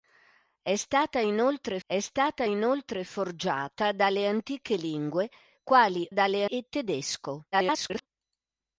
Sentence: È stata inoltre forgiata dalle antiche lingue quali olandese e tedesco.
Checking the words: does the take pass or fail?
fail